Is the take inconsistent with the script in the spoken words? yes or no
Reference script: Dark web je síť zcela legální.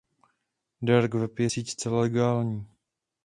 no